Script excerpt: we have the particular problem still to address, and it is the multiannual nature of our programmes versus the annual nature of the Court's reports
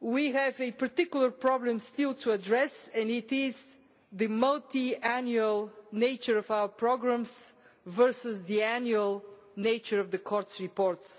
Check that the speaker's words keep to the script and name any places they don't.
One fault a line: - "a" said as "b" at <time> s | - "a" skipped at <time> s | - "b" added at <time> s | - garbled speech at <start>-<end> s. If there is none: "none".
- "the" said as "a" at 0.6 s